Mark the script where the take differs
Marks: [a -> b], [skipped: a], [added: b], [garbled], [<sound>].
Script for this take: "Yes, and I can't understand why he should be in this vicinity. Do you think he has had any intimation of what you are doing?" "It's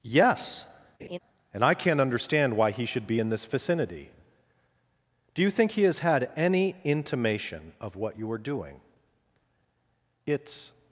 "Yes, [laugh] and I can't understand why he should be in this vicinity. Do you think he has had any intimation of what you are doing?" "It's